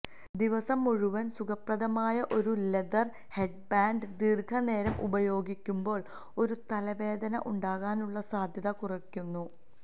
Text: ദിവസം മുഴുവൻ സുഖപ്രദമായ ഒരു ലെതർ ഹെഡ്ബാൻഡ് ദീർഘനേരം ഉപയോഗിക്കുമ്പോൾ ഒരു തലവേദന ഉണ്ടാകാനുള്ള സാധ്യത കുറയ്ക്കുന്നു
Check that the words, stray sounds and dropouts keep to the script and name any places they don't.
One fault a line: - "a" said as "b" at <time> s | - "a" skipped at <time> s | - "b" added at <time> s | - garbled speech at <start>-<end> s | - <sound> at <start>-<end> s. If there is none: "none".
none